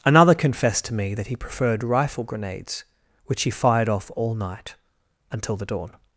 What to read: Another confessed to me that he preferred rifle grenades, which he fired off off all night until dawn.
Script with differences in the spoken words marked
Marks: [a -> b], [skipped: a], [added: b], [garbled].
Another confessed to me that he preferred rifle grenades, which he fired off [skipped: off] all night until [added: the] dawn.